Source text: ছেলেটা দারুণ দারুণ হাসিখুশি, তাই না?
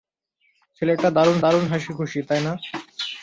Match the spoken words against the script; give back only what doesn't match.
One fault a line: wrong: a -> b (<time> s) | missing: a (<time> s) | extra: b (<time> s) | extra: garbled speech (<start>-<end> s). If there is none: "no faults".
no faults